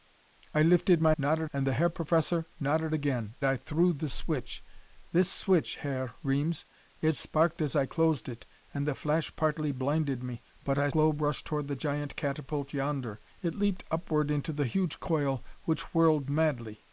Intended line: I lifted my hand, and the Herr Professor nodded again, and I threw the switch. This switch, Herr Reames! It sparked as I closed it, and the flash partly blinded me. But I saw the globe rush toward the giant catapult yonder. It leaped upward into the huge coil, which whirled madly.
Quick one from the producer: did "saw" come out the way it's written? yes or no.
no